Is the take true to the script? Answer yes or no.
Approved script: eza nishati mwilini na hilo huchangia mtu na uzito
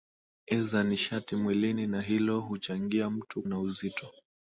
yes